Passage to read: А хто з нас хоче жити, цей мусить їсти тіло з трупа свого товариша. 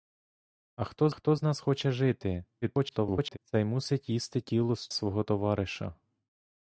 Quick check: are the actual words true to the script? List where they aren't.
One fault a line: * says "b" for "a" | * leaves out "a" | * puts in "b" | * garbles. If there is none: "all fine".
* puts in "хто"
* garbles
* leaves out "трупа"